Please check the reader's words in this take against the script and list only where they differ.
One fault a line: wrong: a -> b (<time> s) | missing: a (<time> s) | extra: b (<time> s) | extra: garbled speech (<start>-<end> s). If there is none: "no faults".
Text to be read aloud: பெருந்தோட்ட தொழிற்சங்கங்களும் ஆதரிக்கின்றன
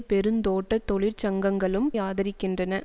no faults